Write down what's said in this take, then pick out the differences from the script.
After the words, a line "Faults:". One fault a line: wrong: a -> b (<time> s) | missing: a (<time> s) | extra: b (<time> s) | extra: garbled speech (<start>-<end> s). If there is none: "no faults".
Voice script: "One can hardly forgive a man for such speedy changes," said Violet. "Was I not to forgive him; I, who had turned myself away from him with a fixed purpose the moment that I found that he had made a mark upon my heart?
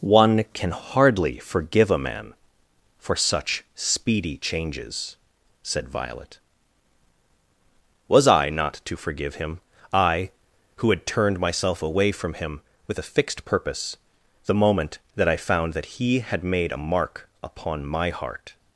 "One can hardly forgive a man for such speedy changes," said Violet. "Was I not to forgive him; I, who had turned myself away from him with a fixed purpose the moment that I found that he had made a mark upon my heart?
Faults:
no faults